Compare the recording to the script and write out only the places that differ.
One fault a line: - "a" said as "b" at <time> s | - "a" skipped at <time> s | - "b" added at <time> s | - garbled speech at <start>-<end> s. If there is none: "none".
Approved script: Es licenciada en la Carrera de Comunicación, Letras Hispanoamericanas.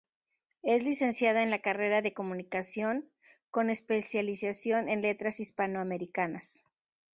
- "con especialización en" added at 3.5 s